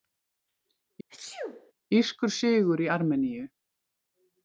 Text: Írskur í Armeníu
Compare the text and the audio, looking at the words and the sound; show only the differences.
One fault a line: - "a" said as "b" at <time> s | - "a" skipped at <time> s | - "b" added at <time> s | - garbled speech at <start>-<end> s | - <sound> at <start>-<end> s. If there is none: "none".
- sneeze at 1.1-1.7 s
- "sigur" added at 2.4 s